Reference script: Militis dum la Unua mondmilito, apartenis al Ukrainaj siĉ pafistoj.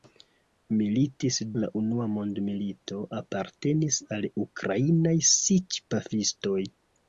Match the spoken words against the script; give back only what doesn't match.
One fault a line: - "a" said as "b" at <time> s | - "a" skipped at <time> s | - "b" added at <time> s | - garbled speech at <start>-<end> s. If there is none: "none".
- "dum" skipped at 1.4 s